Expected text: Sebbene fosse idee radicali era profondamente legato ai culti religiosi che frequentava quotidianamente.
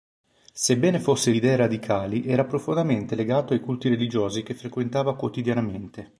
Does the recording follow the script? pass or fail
pass